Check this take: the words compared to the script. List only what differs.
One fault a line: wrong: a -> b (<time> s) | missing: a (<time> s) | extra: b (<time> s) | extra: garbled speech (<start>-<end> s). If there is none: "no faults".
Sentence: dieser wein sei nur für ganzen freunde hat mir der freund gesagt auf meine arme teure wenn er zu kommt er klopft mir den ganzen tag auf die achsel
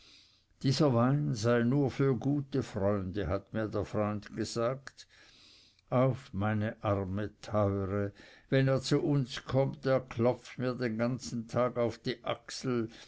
wrong: ganzen -> gute (2.2 s)
extra: uns (9.0 s)